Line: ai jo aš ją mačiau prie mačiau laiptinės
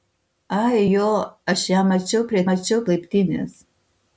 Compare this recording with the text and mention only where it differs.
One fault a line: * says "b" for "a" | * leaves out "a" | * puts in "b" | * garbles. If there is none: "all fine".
all fine